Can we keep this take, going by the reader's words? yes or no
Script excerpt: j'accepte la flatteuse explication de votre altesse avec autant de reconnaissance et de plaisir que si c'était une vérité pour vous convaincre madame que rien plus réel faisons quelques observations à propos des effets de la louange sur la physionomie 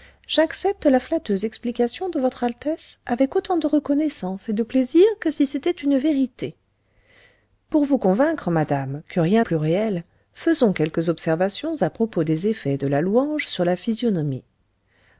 yes